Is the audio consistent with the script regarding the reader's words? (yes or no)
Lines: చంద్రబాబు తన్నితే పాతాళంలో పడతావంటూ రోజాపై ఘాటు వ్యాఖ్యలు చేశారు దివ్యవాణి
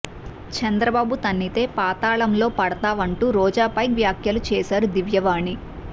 no